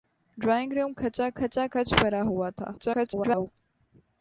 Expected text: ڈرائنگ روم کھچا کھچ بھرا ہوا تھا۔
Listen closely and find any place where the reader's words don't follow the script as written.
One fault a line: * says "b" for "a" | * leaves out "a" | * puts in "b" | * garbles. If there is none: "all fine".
* puts in "کھچا"
* garbles